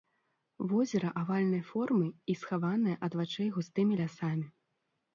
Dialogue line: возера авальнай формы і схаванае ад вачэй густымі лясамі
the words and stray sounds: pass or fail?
pass